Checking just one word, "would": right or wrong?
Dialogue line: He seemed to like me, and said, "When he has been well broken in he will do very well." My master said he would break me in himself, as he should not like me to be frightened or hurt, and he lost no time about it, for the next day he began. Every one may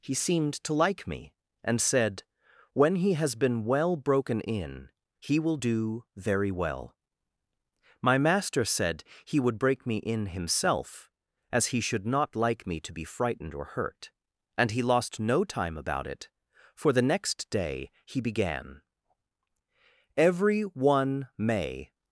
right